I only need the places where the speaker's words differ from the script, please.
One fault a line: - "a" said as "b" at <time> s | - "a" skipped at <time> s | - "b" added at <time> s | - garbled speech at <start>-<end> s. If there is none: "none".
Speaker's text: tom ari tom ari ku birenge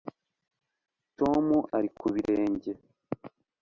- "tom ari" skipped at 1.9 s